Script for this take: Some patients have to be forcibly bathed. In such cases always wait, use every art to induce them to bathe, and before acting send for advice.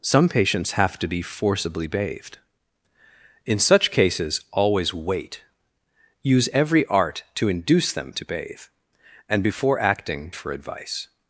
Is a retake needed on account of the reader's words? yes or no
yes